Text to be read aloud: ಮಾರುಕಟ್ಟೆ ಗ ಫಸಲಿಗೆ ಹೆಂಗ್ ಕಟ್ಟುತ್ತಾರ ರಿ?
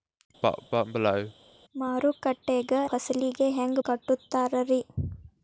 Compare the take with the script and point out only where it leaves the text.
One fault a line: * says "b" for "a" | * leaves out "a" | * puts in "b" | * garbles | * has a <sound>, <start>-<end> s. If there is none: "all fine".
* has a cough, 0.4-1.3 s